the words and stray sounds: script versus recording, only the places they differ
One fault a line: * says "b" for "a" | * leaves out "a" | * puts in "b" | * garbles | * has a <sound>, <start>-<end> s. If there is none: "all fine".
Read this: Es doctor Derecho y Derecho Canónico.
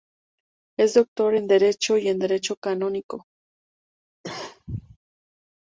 * puts in "en"
* puts in "en"
* has a cough, 4.2-5.0 s